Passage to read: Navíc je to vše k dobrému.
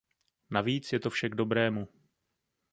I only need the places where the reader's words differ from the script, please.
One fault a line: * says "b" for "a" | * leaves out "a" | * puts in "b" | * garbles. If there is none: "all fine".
all fine